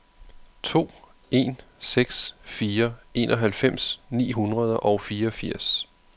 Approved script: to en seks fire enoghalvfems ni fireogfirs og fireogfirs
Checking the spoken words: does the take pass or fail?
fail